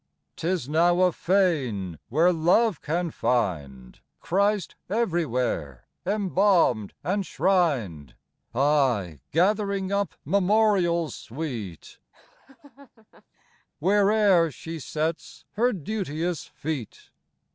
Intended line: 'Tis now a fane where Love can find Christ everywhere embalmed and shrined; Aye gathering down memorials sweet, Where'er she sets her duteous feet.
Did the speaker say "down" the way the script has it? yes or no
no